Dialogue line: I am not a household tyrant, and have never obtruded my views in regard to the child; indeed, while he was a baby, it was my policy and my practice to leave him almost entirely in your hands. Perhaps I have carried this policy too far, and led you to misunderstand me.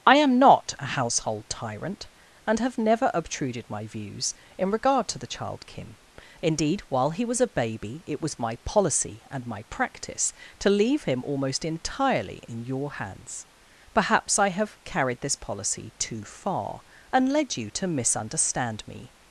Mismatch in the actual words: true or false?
true